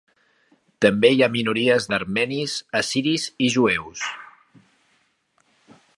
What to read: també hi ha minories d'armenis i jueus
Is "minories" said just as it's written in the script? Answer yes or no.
yes